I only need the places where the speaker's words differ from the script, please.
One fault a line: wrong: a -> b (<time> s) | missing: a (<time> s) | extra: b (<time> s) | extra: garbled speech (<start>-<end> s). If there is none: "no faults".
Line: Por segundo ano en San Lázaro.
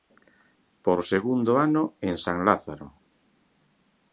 no faults